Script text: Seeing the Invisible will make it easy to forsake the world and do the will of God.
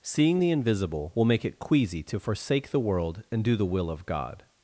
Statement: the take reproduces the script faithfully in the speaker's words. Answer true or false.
false